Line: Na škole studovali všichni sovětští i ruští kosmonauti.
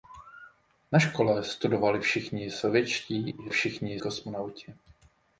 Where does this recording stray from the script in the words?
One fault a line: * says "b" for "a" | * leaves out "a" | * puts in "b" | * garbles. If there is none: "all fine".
* says "všichni" for "ruští"